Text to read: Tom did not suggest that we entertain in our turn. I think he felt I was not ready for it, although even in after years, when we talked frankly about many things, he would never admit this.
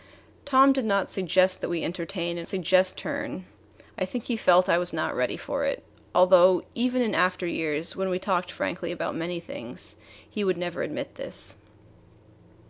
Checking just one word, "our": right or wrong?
wrong